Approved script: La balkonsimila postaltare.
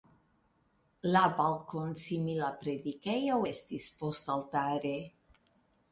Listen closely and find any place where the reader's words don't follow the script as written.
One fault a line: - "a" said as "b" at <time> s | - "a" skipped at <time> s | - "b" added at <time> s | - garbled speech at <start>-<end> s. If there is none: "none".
- "predikejo estis" added at 2.6 s